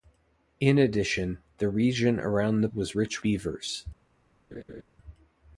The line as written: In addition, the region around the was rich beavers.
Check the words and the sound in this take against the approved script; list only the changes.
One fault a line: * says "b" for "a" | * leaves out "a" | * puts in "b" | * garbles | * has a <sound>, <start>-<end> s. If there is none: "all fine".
* has a laugh, 4.5-4.8 s